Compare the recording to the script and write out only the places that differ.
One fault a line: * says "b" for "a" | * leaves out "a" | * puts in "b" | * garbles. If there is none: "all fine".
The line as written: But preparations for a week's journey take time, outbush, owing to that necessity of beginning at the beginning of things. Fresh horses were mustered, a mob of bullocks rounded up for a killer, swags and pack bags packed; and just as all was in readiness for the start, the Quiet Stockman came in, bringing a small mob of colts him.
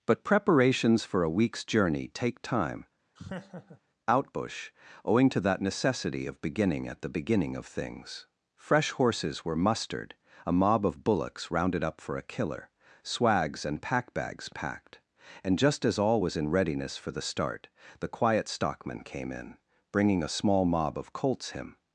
all fine